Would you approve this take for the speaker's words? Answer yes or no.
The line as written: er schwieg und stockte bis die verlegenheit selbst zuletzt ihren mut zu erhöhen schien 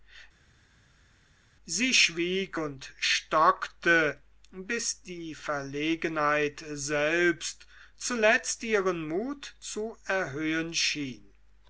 no